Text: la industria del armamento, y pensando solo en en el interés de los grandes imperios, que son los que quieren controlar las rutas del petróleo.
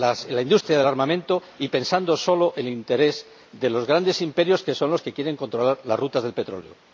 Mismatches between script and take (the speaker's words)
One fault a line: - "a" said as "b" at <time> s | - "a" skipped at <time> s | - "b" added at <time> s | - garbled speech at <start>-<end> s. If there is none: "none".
- "en" skipped at 2.7 s